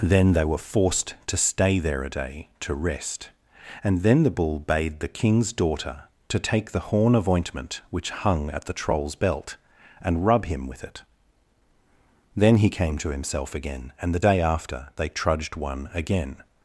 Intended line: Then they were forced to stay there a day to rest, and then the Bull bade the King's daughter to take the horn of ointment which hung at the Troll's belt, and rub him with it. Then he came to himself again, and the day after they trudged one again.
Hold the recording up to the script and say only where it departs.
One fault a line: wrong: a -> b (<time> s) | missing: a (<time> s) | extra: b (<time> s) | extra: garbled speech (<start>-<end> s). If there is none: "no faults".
no faults